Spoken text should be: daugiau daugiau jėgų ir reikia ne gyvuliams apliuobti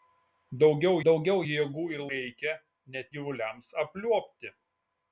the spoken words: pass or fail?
pass